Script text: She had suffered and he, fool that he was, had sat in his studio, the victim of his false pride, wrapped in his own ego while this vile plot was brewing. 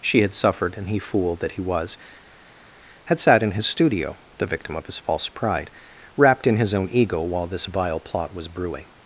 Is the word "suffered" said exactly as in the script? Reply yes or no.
yes